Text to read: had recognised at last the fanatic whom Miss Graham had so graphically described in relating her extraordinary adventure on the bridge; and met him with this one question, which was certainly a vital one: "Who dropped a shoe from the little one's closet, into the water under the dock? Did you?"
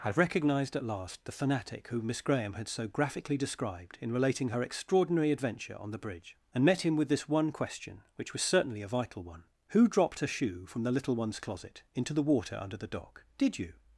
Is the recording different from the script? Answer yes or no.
no